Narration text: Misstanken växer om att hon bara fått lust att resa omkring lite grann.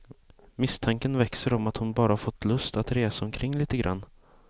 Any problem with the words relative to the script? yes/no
no